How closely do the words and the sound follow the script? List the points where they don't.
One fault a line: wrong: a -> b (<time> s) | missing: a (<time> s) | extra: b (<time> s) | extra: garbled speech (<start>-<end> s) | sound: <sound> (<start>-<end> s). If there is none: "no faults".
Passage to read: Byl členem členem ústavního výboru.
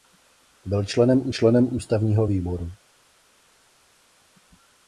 no faults